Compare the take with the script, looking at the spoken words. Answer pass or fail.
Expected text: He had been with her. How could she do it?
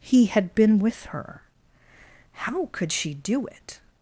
pass